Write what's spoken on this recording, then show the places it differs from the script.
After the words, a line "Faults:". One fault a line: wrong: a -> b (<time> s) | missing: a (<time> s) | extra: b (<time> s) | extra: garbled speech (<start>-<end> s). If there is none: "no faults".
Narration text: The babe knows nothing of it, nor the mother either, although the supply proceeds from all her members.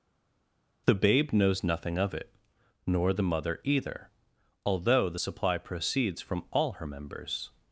The babe knows nothing of it, nor the mother either, although the supply proceeds from all her members.
Faults:
no faults